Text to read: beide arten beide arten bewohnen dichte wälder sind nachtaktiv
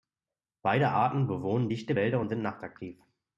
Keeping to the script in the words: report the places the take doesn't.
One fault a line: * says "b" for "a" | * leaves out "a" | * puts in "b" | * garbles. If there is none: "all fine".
* leaves out "beide arten"
* puts in "und"